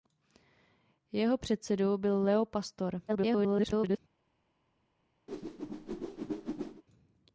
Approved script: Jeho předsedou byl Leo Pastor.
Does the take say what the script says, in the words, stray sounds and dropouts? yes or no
no